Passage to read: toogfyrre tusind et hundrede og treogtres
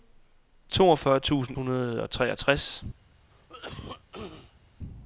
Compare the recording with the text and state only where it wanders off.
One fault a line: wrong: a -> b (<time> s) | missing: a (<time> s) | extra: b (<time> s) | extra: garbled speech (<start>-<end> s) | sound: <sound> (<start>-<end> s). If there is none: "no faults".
missing: et (1.6 s)
sound: cough (3.3-4.7 s)